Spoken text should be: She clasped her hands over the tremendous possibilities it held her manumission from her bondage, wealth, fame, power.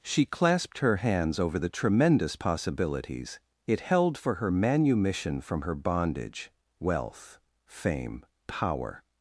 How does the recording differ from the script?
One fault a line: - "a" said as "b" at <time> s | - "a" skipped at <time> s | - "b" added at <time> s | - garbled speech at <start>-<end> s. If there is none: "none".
- "for" added at 4.2 s